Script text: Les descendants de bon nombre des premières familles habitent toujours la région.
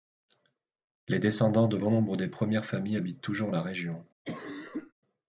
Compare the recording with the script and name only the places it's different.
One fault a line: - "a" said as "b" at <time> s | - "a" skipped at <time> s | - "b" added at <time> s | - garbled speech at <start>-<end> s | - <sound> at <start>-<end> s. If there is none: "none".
- cough at 4.2-4.9 s